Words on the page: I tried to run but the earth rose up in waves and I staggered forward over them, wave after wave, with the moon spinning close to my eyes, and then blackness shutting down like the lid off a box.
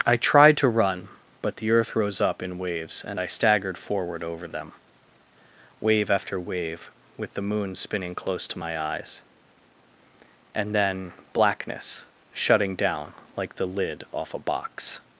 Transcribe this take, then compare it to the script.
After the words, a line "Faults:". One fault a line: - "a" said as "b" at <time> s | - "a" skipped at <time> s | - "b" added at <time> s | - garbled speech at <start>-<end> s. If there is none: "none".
I tried to run but the earth rose up in waves and I staggered forward over them, wave after wave, with the moon spinning close to my eyes, and then blackness shutting down like the lid off a box.
Faults:
none